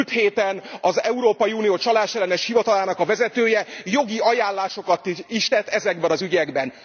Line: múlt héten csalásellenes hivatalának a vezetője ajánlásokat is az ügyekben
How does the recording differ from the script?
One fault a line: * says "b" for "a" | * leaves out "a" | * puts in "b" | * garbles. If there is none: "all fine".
* puts in "az európai unió"
* puts in "jogi"
* puts in "tett ezekben"